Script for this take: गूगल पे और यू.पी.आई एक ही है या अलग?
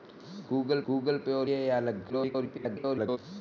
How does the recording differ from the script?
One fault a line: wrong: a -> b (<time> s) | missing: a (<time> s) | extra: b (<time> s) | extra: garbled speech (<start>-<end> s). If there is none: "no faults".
extra: गूगल (0.9 s)
missing: यू.पी.आई एक ही (1.5 s)
extra: garbled speech (2.1-3.2 s)